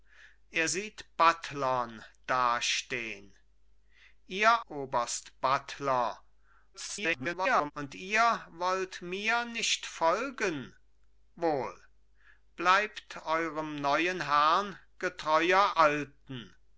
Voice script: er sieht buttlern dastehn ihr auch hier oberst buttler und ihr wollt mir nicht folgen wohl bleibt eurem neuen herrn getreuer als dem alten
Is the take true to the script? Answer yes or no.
no